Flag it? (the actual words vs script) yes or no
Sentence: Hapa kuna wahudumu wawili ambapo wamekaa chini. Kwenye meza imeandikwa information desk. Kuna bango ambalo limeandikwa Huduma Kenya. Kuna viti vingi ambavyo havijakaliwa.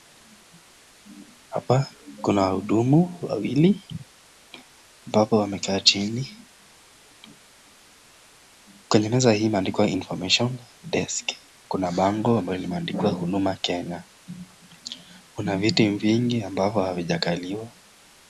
yes